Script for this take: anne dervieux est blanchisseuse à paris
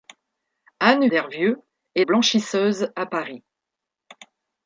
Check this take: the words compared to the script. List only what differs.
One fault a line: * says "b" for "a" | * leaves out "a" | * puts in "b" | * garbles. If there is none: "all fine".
all fine